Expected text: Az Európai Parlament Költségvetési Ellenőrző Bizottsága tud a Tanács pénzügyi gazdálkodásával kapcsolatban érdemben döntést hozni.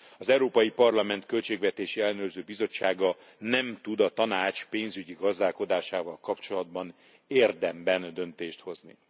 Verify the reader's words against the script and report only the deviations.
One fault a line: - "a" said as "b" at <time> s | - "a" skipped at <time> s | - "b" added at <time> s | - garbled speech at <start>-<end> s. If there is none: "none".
- "nem" added at 3.4 s